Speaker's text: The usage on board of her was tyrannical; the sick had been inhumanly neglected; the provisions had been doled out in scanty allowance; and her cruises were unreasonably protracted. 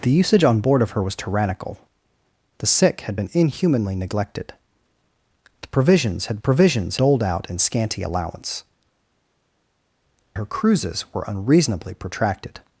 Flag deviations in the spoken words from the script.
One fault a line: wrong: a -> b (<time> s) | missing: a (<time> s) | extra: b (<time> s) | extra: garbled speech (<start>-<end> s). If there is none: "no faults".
wrong: been -> provisions (6.4 s)
missing: and (8.6 s)